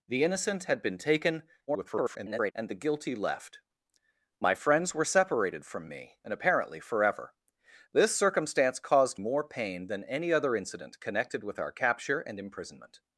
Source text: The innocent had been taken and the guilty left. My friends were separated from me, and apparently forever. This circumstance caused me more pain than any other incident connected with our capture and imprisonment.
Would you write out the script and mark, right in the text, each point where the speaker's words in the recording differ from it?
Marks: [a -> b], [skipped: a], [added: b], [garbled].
The innocent had been taken [garbled] and the guilty left. My friends were separated from me, and apparently forever. This circumstance caused [skipped: me] more pain than any other incident connected with our capture and imprisonment.